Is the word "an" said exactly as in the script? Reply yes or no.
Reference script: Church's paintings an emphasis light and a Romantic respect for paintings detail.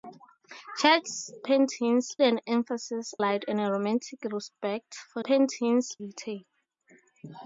yes